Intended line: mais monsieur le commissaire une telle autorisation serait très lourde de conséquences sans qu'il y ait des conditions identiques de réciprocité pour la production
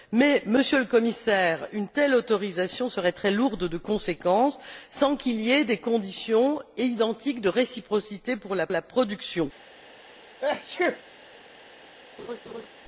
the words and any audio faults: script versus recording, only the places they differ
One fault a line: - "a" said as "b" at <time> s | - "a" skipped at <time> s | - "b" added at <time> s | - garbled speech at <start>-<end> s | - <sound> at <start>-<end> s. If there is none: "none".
- "la" added at 8.7 s
- sneeze at 10.4-11.0 s
- laugh at 12.2-12.7 s